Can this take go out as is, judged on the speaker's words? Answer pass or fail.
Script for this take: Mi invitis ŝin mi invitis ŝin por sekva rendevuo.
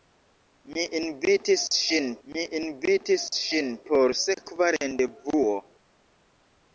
pass